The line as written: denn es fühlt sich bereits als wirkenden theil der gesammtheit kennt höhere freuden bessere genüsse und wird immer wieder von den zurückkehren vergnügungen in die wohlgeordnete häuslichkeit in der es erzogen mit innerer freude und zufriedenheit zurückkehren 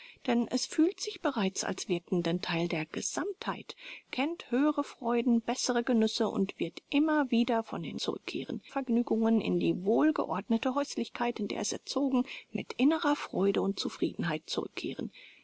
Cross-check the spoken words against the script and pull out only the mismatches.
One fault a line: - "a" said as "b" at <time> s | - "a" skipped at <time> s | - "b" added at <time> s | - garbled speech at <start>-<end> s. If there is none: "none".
none